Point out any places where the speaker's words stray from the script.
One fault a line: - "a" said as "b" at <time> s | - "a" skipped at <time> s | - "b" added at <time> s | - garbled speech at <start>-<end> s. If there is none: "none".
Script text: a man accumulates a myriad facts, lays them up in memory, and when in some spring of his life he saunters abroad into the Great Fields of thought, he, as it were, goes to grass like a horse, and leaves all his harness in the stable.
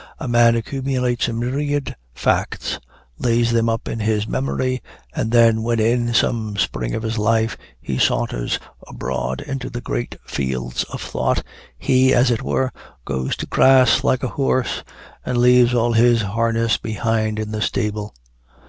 - "his" added at 4.0 s
- "then" added at 5.3 s
- "behind" added at 16.8 s